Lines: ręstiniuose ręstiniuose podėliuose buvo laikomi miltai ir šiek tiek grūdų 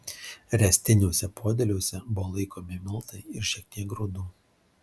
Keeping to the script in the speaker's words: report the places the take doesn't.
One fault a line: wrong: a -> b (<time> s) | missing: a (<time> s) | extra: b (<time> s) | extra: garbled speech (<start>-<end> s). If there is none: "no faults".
missing: ręstiniuose (1.3 s)